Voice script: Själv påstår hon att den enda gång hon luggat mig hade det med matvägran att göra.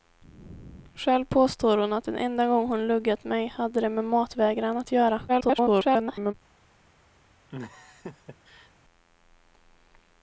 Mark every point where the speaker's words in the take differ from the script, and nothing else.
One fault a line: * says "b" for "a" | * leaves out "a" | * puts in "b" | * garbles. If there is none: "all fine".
* garbles